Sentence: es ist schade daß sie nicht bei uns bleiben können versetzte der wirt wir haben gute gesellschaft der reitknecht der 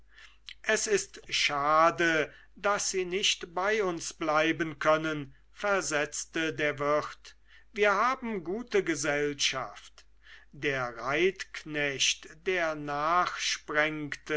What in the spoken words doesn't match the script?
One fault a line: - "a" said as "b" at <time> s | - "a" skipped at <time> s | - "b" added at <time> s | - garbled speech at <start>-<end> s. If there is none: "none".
none